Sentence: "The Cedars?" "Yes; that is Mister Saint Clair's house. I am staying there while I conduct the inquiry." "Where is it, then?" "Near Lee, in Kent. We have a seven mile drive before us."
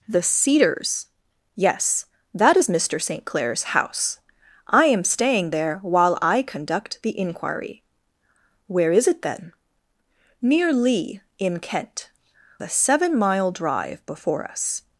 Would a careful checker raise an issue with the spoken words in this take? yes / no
yes